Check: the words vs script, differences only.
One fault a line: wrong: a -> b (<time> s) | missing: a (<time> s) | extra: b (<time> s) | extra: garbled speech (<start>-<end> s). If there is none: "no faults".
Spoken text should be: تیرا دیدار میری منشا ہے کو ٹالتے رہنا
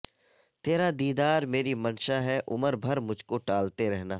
extra: عمر بھر مجھ (2.5 s)